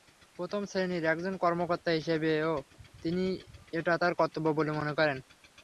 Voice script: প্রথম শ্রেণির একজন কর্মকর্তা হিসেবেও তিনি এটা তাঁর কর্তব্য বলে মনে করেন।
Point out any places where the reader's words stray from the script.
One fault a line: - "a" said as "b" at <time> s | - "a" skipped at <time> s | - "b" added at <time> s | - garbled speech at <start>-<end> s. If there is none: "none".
none